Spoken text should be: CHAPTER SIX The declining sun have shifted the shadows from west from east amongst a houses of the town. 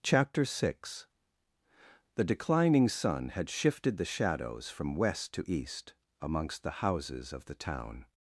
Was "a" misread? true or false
true